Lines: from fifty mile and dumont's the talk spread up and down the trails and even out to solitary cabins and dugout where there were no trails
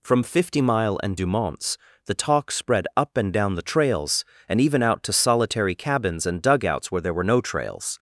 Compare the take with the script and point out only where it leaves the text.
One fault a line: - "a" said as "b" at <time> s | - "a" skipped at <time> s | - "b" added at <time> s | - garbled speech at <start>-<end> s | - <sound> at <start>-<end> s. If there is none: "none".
- "dugout" said as "dugouts" at 6.4 s